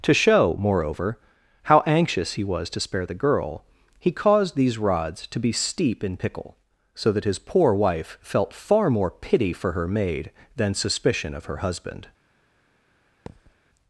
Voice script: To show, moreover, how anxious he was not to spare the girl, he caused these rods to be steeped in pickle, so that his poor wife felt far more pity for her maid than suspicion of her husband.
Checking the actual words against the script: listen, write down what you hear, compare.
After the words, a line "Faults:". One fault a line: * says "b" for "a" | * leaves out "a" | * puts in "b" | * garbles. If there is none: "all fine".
To show, moreover, how anxious he was to spare the girl, he caused these rods to be steep in pickle, so that his poor wife felt far more pity for her maid than suspicion of her husband.
Faults:
* leaves out "not"
* says "steep" for "steeped"